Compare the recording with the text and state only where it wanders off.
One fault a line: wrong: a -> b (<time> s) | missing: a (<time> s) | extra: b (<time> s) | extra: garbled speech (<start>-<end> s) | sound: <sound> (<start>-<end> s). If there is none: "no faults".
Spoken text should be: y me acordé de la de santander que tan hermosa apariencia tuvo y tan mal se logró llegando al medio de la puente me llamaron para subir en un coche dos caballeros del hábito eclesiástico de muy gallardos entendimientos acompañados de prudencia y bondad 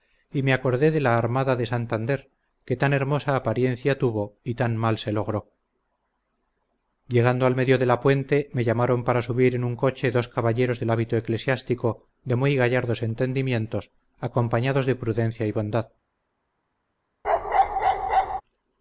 extra: armada (1.2 s)
sound: bark (17.2-18.4 s)